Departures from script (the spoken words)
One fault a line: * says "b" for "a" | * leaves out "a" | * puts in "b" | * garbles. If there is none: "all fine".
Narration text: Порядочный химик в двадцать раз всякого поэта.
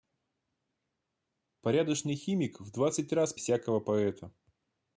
all fine